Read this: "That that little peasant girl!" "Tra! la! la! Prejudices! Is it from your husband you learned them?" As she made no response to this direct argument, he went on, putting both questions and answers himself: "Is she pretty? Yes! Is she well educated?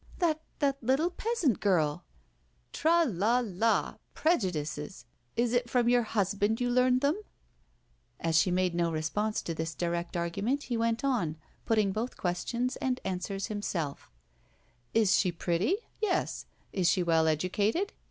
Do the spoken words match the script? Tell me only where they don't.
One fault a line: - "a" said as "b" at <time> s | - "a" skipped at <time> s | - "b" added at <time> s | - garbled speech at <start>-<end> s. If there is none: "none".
none